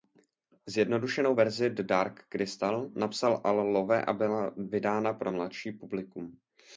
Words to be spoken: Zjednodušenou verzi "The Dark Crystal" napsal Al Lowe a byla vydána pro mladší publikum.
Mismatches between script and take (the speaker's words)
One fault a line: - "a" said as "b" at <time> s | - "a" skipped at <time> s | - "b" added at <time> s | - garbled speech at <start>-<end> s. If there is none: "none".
none